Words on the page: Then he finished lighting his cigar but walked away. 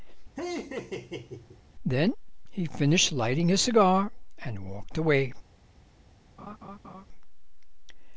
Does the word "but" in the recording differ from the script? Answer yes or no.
yes